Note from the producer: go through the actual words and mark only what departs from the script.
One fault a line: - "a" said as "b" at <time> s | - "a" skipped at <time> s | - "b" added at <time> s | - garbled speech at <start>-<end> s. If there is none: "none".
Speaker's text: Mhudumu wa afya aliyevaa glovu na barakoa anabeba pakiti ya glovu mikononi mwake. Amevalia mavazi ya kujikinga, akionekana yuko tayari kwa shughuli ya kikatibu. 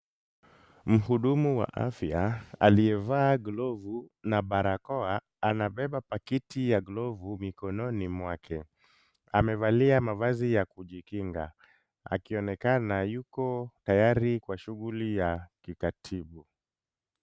none